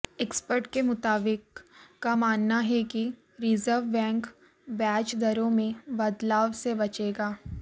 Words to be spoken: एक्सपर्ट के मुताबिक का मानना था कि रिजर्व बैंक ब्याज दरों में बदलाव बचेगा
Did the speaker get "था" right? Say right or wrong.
wrong